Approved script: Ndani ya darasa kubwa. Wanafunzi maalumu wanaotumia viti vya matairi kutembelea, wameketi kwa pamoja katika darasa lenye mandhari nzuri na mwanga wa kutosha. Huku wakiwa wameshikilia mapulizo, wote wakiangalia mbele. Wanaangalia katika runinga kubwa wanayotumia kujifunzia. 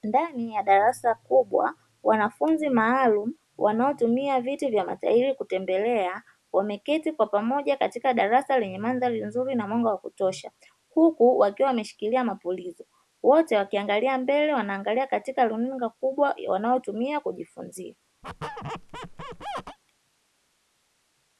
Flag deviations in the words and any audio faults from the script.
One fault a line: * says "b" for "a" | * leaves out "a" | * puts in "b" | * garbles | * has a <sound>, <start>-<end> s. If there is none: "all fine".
* has a squeak, 18.2-19.8 s